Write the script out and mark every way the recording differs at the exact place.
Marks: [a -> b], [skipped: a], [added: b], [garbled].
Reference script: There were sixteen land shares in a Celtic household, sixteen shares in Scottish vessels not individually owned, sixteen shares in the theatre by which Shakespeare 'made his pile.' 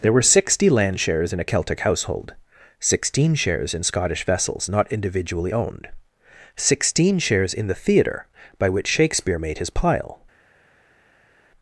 There were [sixteen -> sixty] land shares in a Celtic household, sixteen shares in Scottish vessels not individually owned, sixteen shares in the theatre by which Shakespeare 'made his pile.'